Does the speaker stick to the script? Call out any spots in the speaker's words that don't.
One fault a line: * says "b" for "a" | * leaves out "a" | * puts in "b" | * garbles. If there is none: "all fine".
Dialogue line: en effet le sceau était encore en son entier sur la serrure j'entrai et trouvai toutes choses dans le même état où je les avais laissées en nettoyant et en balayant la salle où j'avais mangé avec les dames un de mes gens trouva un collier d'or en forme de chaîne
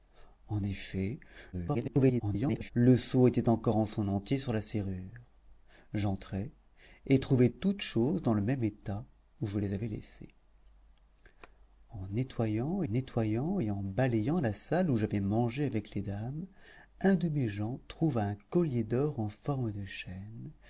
* garbles
* puts in "nettoyant"